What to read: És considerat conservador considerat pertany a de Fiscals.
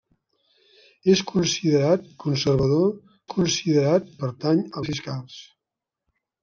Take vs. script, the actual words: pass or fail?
pass